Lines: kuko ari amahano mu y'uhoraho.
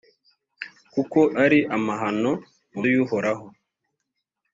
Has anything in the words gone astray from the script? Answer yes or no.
no